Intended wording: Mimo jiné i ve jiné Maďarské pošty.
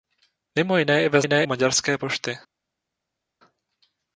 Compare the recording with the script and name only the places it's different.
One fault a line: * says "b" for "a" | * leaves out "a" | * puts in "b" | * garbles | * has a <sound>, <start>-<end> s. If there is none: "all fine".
all fine